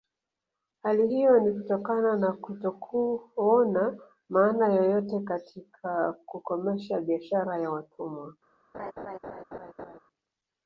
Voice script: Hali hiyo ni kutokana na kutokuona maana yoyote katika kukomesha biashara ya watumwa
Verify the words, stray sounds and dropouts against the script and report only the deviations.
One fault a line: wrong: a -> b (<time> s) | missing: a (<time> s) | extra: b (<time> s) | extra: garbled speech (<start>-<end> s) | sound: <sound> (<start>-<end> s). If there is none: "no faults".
sound: laugh (8.7-10.0 s)